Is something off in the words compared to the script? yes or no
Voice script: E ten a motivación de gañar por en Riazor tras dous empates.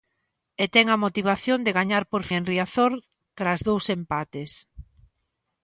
no